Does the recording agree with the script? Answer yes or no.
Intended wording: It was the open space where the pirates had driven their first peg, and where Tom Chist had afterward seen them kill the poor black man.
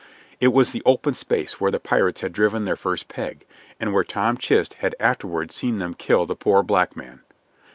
yes